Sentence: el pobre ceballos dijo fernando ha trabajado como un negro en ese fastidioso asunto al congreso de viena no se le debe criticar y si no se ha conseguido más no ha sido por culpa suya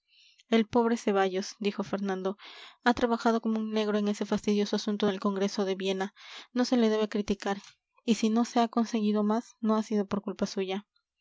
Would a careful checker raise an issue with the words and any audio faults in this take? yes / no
yes